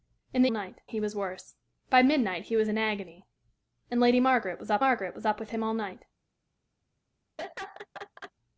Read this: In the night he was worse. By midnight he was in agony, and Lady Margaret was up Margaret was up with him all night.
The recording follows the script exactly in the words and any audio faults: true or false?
false